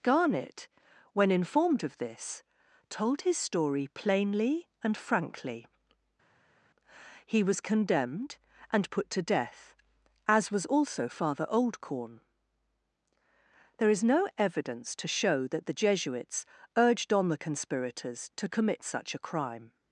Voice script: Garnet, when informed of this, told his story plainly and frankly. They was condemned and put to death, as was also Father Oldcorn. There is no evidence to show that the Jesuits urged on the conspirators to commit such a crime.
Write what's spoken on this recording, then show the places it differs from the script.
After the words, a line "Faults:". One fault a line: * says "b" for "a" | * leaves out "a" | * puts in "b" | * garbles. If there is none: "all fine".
Garnet, when informed of this, told his story plainly and frankly. He was condemned and put to death, as was also Father Oldcorn. There is no evidence to show that the Jesuits urged on the conspirators to commit such a crime.
Faults:
* says "He" for "They"